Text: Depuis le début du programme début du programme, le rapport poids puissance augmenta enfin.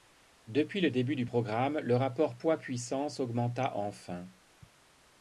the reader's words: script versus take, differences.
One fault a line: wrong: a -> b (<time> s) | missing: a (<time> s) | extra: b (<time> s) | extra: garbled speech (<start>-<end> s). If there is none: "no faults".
missing: début du programme (1.8 s)